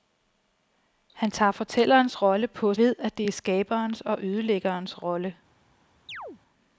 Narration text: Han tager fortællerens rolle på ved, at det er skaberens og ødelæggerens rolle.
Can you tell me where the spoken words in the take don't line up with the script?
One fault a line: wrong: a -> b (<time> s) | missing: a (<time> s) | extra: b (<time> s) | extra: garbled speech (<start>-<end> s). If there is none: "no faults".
no faults